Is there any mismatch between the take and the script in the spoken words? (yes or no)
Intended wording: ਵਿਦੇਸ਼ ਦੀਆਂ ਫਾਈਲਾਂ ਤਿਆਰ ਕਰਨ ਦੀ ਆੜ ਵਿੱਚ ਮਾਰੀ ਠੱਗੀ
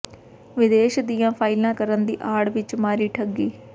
yes